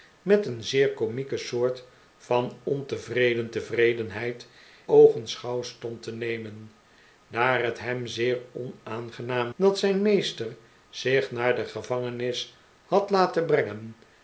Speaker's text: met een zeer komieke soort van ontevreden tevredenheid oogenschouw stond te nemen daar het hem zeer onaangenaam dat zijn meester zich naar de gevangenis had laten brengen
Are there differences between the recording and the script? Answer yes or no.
no